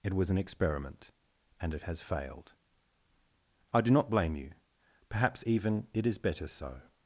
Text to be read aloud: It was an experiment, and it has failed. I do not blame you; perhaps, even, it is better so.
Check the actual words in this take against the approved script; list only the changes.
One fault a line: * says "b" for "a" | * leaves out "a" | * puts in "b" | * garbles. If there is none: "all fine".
all fine